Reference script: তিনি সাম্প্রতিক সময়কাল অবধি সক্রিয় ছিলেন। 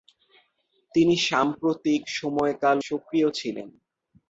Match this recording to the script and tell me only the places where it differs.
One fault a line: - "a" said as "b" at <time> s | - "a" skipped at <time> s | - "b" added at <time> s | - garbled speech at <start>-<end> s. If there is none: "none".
- "অবধি" skipped at 2.8 s